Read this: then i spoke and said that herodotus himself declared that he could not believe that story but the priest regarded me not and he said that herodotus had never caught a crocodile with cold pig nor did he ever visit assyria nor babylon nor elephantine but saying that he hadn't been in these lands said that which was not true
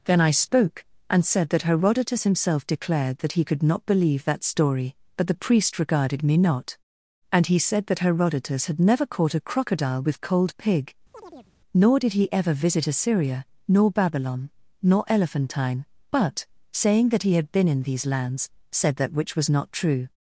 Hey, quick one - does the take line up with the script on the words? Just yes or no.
no